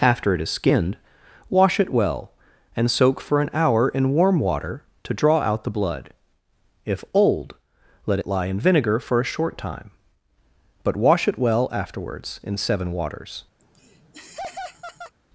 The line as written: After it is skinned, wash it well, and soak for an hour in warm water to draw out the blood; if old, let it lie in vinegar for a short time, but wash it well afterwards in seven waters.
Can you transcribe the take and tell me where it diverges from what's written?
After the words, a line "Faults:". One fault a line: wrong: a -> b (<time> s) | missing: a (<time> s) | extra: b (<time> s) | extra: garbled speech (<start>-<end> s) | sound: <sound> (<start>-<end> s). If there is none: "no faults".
After it is skinned, wash it well, and soak for an hour in warm water to draw out the blood; if old, let it lie in vinegar for a short time, but wash it well afterwards in seven waters.
Faults:
sound: laugh (13.6-15.1 s)